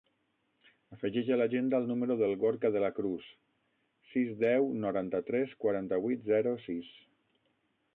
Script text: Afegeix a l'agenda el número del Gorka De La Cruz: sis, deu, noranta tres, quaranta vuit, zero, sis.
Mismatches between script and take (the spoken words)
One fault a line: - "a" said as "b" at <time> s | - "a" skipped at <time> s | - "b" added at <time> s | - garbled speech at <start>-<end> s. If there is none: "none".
none